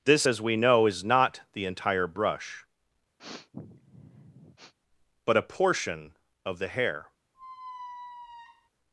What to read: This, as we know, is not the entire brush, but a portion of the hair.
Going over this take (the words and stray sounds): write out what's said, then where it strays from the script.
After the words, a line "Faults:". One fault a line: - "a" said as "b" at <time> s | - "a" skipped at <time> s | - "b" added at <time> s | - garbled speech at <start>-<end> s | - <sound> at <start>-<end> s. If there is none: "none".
This, as we know, is not the entire brush, but a portion of the hair.
Faults:
- sniff at 3.2-4.7 s
- squeak at 7.3-8.7 s